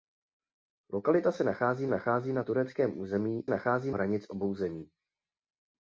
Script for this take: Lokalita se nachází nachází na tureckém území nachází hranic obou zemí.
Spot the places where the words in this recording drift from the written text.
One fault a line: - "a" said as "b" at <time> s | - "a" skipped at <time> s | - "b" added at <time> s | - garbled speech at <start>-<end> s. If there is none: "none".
none